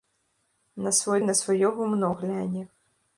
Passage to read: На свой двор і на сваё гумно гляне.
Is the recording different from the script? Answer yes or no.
yes